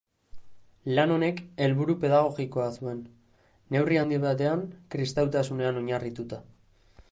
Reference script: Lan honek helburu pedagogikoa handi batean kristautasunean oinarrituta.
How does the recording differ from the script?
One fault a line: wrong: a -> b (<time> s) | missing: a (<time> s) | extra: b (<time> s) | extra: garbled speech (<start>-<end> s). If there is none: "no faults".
extra: zuen neurri (2.8 s)